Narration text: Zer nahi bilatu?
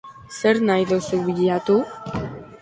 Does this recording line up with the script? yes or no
no